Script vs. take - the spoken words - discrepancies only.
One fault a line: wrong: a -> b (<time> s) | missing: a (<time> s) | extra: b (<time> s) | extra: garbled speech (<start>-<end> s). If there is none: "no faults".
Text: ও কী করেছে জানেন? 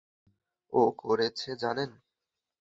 missing: কী (0.8 s)